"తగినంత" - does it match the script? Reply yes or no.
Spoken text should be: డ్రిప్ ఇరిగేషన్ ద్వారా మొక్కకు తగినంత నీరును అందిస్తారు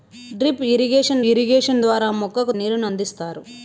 no